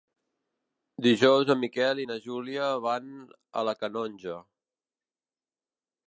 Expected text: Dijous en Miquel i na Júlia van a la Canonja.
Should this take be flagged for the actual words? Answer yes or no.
no